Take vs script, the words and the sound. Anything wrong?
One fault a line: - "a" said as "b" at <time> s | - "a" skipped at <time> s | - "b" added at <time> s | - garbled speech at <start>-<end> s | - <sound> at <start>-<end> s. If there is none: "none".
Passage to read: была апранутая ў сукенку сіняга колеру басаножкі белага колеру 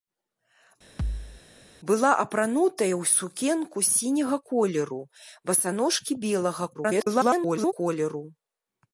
- thud at 1.0-1.4 s
- garbled speech at 6.7-7.7 s